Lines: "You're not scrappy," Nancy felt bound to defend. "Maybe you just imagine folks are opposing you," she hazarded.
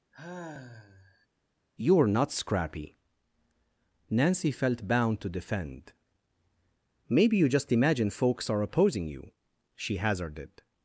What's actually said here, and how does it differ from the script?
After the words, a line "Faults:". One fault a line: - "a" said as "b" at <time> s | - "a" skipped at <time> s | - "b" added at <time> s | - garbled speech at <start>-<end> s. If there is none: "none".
"You're not scrappy," Nancy felt bound to defend. "Maybe you just imagine folks are opposing you," she hazarded.
Faults:
none